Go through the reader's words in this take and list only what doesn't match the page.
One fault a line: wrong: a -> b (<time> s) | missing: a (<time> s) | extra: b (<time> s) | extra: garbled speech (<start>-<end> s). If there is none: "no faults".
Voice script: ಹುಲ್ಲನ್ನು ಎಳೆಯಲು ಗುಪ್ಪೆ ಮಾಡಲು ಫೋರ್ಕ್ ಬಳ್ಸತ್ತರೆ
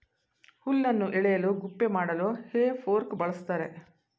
extra: ಹೇ (2.5 s)